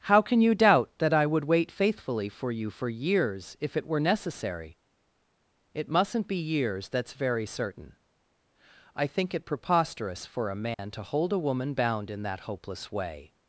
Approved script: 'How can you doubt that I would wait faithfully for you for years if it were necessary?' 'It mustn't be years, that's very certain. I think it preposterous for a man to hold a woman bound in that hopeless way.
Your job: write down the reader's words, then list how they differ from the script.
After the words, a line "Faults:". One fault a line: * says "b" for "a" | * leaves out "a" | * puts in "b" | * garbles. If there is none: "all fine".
'How can you doubt that I would wait faithfully for you for years if it were necessary?' 'It mustn't be years, that's very certain. I think it preposterous for a man to hold a woman bound in that hopeless way.
Faults:
all fine